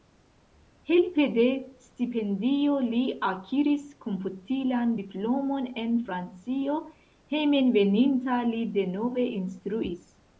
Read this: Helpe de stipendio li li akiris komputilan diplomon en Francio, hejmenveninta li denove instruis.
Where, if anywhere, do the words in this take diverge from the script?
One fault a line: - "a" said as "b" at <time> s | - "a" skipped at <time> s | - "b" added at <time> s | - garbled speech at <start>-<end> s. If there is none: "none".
- "li" skipped at 3.0 s